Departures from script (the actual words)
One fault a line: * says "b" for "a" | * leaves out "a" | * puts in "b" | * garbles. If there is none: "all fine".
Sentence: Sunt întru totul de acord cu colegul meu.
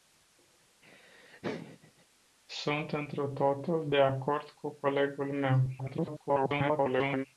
* garbles